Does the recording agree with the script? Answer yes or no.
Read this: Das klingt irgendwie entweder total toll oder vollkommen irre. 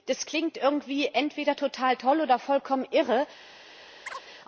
yes